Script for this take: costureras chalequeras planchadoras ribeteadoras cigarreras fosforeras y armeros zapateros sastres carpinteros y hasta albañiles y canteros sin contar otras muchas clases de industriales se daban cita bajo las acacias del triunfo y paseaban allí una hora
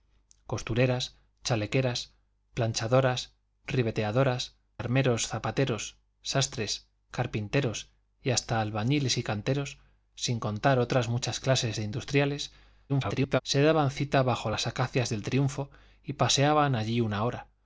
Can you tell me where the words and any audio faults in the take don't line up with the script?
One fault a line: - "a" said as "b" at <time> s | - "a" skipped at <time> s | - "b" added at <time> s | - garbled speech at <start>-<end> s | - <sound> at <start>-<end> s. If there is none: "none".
- "cigarreras fosforeras y" skipped at 4.6 s
- garbled speech at 12.9-13.4 s